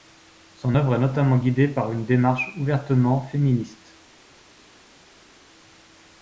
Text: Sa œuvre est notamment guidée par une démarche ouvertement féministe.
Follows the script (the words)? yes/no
no